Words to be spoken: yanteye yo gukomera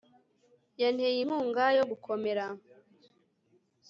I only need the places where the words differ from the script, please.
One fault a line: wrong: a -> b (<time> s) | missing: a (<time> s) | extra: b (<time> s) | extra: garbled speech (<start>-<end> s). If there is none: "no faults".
extra: inkunga (1.2 s)